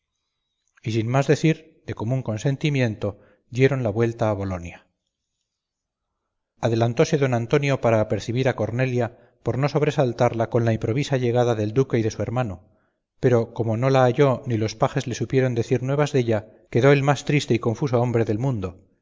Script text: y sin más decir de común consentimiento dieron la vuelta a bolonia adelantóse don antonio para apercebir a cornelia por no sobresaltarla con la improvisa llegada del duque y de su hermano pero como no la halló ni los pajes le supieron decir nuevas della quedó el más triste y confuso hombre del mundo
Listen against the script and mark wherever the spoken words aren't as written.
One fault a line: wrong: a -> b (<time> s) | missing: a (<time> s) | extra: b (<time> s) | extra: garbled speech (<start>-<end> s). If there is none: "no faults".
no faults